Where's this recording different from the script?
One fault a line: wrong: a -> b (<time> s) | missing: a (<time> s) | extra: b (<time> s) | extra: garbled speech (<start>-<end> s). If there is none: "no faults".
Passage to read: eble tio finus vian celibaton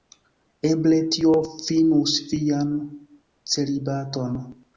no faults